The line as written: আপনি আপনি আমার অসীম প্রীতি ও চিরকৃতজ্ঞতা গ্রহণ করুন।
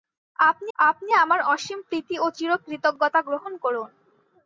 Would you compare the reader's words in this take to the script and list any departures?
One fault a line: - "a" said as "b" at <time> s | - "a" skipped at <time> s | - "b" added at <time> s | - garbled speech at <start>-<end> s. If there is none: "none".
none